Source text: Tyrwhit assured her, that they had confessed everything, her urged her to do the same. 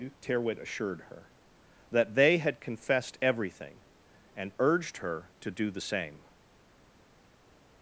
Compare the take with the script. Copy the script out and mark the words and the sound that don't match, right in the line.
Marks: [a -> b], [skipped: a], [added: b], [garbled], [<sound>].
Tyrwhit assured her, that they had confessed everything, [her -> and] urged her to do the same.